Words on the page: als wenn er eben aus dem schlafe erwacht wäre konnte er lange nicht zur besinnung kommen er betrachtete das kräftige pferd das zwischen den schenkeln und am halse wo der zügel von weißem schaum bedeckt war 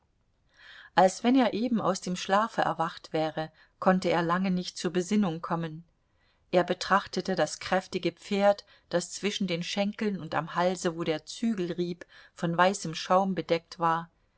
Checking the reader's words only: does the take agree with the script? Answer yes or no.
no